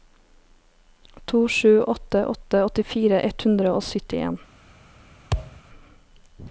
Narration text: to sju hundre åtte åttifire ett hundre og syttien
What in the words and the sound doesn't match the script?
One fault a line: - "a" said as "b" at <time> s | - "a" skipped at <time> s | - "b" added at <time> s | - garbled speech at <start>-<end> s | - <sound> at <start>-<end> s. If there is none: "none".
- "hundre" said as "åtte" at 1.8 s
- thud at 5.3-5.6 s